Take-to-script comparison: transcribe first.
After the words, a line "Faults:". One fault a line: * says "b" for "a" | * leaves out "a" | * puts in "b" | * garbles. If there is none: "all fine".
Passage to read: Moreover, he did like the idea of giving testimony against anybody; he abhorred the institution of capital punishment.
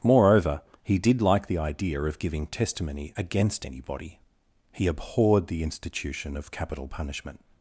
Moreover, he did like the idea of giving testimony against anybody; he abhorred the institution of capital punishment.
Faults:
all fine